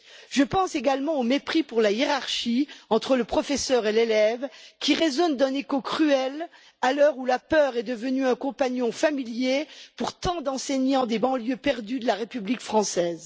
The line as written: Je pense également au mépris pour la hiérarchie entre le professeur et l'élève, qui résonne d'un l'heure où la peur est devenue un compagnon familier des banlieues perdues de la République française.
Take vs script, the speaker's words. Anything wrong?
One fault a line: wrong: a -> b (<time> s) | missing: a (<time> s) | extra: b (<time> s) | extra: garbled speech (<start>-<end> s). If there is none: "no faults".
extra: écho cruel à (5.5 s)
extra: pour tant d'enseignants (10.0 s)